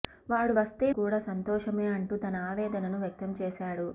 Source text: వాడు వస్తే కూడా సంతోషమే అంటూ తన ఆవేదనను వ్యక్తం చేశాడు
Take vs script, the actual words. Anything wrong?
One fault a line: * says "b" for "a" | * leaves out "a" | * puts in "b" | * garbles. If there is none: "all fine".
all fine